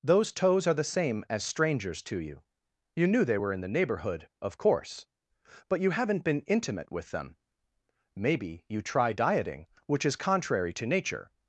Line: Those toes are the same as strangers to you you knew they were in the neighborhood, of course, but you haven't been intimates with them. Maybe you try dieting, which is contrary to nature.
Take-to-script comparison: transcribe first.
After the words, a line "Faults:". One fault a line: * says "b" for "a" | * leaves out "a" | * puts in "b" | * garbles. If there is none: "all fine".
Those toes are the same as strangers to you you knew they were in the neighborhood, of course, but you haven't been intimate with them. Maybe you try dieting, which is contrary to nature.
Faults:
* says "intimate" for "intimates"